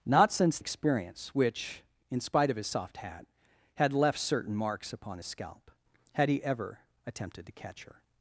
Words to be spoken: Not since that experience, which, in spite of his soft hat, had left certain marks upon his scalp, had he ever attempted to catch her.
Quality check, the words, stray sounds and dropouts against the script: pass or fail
fail